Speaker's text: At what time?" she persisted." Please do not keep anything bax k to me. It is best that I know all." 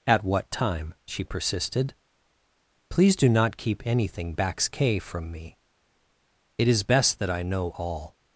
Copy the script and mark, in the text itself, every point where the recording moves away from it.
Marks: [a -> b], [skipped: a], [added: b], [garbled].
At what time?" she persisted." Please do not keep anything bax k [to -> from] me. It is best that I know all."